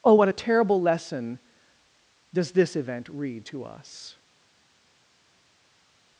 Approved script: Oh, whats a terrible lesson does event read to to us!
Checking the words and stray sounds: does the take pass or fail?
fail